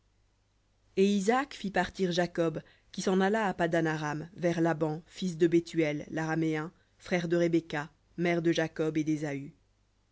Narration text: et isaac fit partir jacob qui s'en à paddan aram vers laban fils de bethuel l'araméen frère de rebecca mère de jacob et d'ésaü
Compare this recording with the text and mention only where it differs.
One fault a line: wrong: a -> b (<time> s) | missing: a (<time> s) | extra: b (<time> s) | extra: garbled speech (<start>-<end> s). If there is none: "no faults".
extra: alla (3.2 s)